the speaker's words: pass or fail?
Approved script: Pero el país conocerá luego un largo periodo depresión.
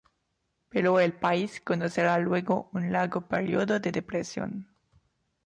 fail